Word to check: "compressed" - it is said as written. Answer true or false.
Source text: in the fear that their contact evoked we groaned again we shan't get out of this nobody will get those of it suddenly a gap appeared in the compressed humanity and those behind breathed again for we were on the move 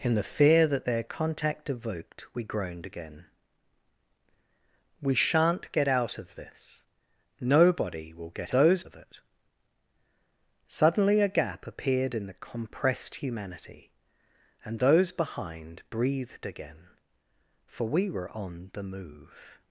true